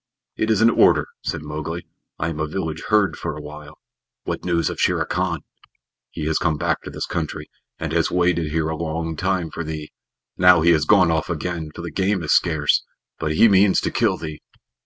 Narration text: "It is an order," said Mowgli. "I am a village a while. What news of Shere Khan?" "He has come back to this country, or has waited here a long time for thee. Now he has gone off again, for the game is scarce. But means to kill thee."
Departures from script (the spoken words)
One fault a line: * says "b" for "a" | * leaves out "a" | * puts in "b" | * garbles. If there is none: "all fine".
* puts in "herd for"
* says "and" for "or"
* puts in "he"